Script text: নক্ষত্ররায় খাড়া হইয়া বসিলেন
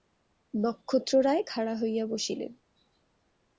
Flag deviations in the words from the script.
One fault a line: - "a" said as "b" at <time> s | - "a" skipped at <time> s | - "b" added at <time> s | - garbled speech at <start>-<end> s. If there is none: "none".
none